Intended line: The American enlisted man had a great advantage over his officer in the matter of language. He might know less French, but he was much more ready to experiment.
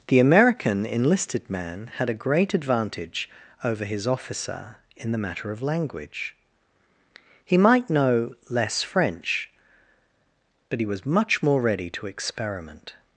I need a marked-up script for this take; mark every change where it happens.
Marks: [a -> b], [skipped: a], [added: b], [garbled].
The American enlisted man had a great advantage over his officer in the matter of language. He might know less French, but he was much more ready to experiment.